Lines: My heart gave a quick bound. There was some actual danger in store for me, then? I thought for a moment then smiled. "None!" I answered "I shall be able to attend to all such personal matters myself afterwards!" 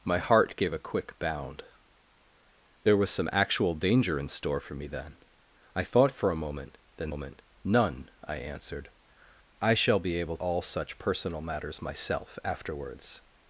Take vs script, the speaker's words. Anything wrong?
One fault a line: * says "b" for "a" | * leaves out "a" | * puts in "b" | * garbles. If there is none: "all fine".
* says "moment" for "smiled"
* leaves out "to attend to"